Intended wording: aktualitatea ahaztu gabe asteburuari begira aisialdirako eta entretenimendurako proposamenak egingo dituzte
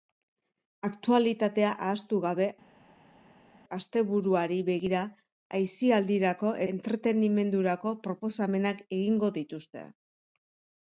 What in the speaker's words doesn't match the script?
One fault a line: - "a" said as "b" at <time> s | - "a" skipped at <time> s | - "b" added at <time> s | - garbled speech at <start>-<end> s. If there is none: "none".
- "eta" skipped at 6.5 s